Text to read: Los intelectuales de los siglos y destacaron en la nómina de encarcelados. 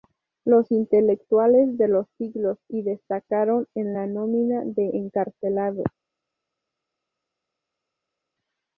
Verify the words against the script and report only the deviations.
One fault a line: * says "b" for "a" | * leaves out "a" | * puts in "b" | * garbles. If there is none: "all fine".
all fine